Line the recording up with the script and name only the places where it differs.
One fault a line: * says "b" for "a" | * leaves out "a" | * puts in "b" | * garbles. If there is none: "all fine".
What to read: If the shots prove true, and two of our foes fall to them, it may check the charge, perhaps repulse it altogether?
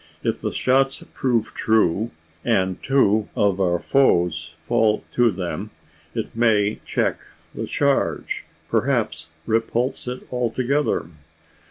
all fine